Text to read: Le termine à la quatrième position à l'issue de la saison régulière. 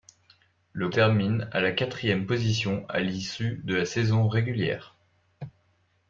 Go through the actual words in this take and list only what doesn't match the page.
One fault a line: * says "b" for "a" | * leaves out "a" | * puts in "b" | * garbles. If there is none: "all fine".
all fine